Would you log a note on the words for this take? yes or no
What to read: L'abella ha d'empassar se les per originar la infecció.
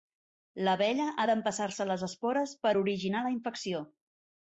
yes